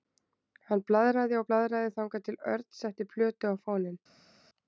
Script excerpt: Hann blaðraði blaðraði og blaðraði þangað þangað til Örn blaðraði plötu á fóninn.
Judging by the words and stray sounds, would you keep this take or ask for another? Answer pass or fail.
fail